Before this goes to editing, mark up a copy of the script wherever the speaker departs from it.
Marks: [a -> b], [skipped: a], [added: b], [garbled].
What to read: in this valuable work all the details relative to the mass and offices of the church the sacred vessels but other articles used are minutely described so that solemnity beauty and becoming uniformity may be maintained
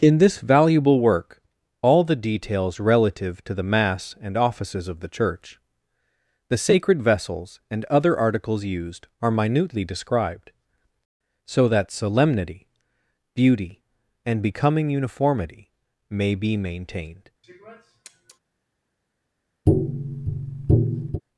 in this valuable work all the details relative to the mass and offices of the church the sacred vessels [but -> and] other articles used are minutely described so that solemnity beauty and becoming uniformity may be maintained